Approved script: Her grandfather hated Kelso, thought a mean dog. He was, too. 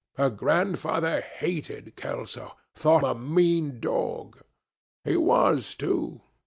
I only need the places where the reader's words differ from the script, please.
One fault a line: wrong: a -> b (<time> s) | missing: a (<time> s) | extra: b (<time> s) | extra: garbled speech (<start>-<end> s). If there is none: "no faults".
no faults